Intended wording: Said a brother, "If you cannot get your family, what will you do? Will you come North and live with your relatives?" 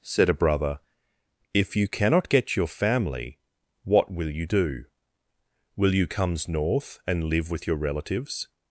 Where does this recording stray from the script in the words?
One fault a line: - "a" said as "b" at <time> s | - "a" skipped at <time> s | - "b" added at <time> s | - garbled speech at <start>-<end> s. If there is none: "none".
- "come" said as "comes" at 6.1 s